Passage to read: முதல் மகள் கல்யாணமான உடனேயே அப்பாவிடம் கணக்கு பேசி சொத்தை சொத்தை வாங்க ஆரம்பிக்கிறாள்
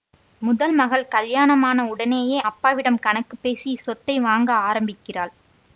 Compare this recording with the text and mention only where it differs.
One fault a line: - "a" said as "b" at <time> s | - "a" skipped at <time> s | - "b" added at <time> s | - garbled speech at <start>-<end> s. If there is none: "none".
- "சொத்தை" skipped at 4.2 s